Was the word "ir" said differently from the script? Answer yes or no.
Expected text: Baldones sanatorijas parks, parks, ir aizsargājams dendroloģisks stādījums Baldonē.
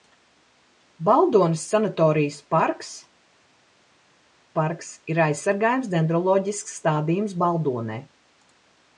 no